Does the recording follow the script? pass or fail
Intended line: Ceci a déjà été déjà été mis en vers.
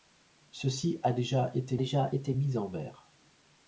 pass